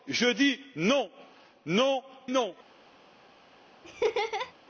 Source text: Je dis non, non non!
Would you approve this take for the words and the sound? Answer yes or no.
no